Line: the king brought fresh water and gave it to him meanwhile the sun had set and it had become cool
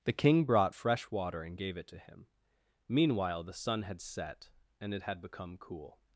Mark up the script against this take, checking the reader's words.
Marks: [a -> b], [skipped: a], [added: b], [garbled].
the king brought fresh water and gave it to him meanwhile the sun had set and it had become cool